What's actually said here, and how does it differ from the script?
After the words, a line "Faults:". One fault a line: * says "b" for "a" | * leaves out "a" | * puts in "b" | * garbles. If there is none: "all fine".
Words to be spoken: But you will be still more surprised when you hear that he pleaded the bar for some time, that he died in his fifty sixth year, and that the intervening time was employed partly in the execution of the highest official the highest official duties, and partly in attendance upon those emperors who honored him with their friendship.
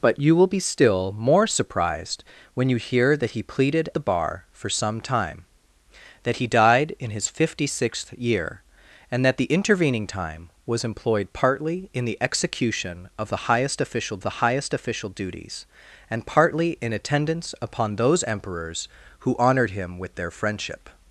But you will be still more surprised when you hear that he pleaded the bar for some time, that he died in his fifty sixth year, and that the intervening time was employed partly in the execution of the highest official the highest official duties, and partly in attendance upon those emperors who honored him with their friendship.
Faults:
all fine